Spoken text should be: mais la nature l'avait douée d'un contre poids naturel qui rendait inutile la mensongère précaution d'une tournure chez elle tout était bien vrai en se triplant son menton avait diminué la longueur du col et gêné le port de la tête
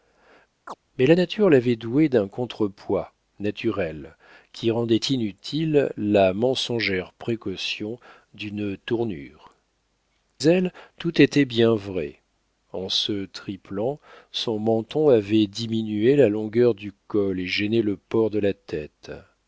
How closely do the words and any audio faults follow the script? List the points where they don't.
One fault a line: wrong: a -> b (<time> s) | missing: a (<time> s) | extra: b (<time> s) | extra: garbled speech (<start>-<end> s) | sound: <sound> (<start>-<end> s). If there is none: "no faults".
sound: chirp (0.7-0.8 s)
missing: chez (9.5 s)